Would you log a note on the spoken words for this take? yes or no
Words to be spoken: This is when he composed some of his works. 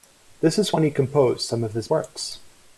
no